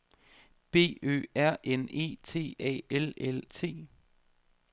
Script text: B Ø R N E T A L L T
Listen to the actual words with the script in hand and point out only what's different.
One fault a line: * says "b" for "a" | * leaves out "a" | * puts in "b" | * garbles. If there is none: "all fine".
all fine